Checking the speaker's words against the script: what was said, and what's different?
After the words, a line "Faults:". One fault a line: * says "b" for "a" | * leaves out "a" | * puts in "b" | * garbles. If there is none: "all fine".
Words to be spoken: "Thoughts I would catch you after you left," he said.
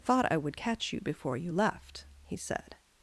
"Thought I would catch you before you left," he said.
Faults:
* says "Thought" for "Thoughts"
* says "before" for "after"